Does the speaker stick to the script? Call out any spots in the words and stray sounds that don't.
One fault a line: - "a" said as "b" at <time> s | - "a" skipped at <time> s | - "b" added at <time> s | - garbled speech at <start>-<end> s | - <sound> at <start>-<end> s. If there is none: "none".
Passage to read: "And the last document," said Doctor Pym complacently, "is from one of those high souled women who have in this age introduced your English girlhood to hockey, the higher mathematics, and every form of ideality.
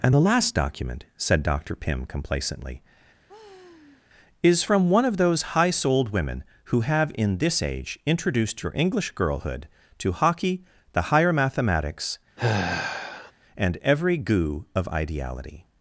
- sigh at 3.3-4.1 s
- sigh at 12.4-13.3 s
- "form" said as "goo" at 14.2 s